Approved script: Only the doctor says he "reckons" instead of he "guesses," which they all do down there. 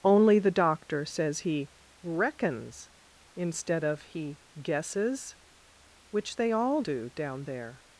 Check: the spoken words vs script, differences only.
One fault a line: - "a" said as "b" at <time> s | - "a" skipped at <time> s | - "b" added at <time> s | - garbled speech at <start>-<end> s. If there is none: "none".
none